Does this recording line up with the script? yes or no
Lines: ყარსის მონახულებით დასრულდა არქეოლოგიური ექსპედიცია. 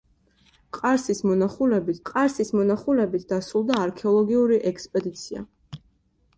no